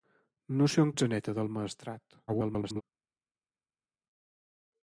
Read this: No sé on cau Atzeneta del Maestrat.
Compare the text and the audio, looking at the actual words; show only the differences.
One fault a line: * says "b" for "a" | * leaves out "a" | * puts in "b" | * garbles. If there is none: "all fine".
* leaves out "cau"
* garbles